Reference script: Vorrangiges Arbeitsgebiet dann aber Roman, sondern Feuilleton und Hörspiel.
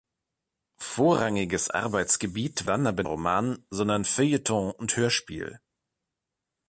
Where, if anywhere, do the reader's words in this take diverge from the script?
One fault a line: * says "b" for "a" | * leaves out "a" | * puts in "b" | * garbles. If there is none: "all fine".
all fine